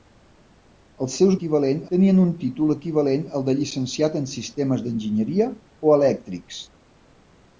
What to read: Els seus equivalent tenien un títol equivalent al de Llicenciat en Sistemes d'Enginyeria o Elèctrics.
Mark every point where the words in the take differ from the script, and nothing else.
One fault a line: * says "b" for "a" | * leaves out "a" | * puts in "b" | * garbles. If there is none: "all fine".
all fine